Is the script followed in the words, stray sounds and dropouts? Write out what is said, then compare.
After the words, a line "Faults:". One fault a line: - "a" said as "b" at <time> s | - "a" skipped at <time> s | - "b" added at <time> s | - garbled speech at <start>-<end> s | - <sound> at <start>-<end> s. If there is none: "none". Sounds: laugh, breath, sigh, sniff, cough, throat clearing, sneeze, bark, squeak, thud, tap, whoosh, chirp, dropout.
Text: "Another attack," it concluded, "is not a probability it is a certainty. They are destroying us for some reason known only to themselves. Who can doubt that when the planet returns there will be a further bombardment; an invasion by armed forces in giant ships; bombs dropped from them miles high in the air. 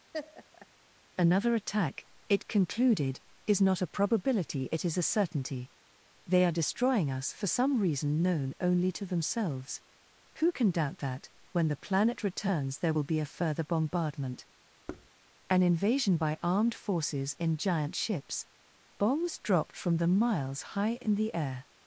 "Another attack," it concluded, "is not a probability it is a certainty. They are destroying us for some reason known only to themselves. Who can doubt that when the planet returns there will be a further bombardment; an invasion by armed forces in giant ships; bombs dropped from them miles high in the air.
Faults:
- laugh at 0.1-0.7 s
- thud at 14.9-15.1 s